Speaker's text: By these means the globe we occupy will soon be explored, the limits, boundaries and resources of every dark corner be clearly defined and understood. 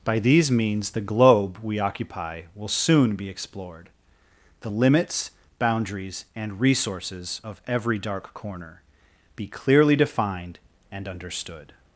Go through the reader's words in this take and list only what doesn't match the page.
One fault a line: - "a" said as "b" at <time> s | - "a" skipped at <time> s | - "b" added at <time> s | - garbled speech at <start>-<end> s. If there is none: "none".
none